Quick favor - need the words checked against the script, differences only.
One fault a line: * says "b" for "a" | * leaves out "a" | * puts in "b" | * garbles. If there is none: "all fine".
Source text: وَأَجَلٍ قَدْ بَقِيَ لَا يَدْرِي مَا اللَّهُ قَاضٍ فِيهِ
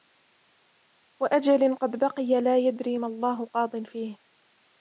all fine